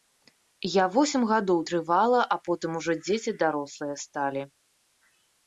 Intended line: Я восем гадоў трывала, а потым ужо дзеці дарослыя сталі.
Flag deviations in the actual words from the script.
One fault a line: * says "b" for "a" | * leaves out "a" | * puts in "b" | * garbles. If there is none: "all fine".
all fine